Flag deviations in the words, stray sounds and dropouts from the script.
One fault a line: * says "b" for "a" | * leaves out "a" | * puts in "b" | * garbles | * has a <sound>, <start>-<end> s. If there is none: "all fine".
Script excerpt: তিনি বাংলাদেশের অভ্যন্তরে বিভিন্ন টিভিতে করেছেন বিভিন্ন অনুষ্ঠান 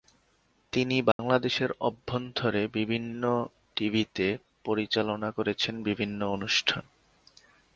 * has a dropout, 1.1-1.2 s
* puts in "পরিচালনা"